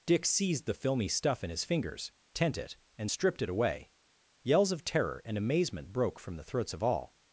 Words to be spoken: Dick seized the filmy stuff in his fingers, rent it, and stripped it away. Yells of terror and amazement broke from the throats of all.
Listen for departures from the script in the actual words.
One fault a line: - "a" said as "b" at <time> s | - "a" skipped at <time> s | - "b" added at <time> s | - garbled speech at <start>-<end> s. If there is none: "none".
- "rent" said as "tent" at 2.3 s